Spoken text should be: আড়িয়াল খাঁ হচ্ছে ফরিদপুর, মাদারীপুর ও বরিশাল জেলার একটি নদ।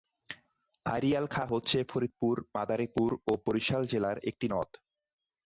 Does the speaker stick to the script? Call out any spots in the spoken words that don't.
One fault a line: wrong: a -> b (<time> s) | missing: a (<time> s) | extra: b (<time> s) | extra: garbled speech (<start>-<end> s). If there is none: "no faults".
no faults